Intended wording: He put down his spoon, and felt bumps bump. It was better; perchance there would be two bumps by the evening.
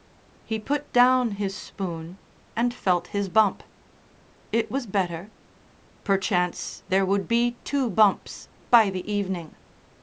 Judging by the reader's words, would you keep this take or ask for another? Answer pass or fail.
fail